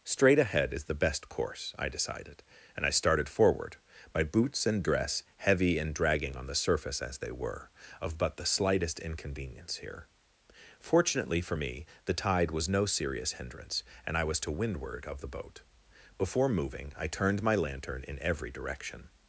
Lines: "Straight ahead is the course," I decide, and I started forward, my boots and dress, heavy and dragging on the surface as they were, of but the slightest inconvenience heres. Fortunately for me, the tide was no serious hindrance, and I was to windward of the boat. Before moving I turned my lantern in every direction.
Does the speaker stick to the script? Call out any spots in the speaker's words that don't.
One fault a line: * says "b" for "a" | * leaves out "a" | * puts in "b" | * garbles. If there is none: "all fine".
* puts in "best"
* says "decided" for "decide"
* says "here" for "heres"